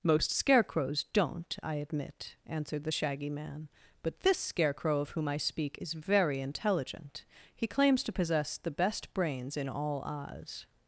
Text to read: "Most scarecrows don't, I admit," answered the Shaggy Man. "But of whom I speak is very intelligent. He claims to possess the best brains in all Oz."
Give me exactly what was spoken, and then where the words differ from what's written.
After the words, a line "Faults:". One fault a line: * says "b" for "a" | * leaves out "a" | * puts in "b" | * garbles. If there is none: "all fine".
"Most scarecrows don't, I admit," answered the Shaggy Man. "But this Scarecrow of whom I speak is very intelligent. He claims to possess the best brains in all Oz."
Faults:
* puts in "this Scarecrow"